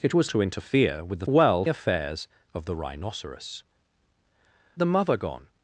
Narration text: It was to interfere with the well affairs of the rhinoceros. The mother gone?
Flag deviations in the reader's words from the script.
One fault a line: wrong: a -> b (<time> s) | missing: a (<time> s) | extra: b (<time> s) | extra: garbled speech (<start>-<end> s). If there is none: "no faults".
no faults